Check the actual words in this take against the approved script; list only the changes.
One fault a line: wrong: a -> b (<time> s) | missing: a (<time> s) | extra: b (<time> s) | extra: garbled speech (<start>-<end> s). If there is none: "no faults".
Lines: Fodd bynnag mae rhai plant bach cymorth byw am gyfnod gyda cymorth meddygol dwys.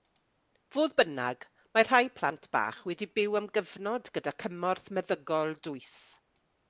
wrong: cymorth -> wedi (2.9 s)